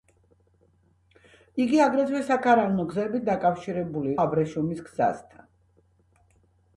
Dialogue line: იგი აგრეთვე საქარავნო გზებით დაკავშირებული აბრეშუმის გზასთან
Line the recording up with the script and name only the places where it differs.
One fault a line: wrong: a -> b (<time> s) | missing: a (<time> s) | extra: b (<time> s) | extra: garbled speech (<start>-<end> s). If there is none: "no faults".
no faults